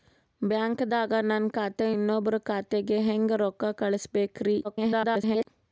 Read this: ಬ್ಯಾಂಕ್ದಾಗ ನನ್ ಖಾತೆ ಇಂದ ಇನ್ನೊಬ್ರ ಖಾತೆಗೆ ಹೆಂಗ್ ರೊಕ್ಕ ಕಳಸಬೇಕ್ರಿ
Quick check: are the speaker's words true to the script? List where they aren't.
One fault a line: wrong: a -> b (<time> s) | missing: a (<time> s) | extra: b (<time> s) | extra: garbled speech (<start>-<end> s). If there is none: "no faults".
missing: ಇಂದ (1.9 s)
extra: garbled speech (4.6-5.5 s)